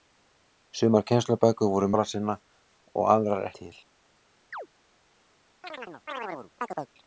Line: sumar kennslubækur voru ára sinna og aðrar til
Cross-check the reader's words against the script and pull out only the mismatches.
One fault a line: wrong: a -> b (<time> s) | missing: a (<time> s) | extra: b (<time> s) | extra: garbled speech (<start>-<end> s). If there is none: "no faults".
no faults